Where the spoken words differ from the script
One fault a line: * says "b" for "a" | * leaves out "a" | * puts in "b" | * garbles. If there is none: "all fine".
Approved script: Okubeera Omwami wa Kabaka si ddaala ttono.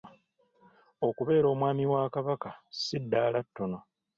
all fine